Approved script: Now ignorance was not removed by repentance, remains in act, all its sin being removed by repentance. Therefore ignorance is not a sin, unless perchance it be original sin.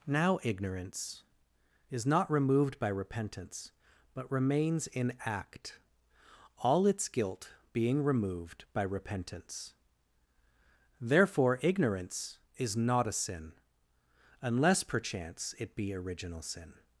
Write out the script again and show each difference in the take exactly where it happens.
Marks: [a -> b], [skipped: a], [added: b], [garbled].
Now ignorance [was -> is] not removed by repentance, [added: but] remains in act, all its [sin -> guilt] being removed by repentance. Therefore ignorance is not a sin, unless perchance it be original sin.